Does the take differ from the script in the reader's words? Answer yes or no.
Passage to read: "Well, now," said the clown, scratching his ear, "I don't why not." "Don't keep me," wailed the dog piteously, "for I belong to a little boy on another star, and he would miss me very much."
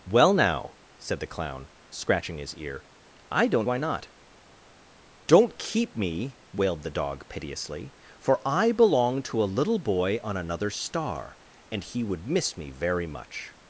no